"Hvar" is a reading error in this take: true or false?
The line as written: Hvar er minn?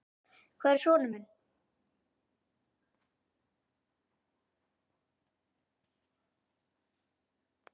false